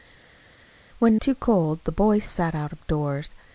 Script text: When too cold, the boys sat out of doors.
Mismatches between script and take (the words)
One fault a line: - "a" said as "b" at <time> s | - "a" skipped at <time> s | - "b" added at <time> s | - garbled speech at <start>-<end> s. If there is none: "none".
none